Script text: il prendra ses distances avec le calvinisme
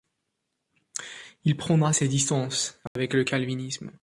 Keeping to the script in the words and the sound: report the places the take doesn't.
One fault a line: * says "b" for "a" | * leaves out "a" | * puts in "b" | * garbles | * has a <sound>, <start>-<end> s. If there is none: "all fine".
* has a dropout, 2.9-3.0 s